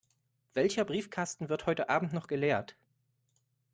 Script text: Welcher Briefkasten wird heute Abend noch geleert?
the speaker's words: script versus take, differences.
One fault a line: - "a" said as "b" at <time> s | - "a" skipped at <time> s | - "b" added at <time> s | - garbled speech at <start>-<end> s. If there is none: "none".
none